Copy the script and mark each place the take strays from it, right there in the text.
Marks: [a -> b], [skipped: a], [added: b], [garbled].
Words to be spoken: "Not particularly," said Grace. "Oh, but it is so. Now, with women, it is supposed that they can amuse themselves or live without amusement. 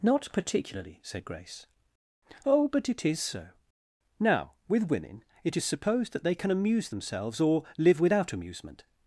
"Not particularly," said Grace. "Oh, but it is so. Now, with women, it is supposed that they can amuse themselves or live without amusement.